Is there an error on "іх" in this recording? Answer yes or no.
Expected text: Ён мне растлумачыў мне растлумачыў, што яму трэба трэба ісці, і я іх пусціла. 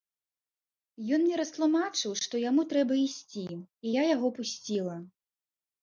yes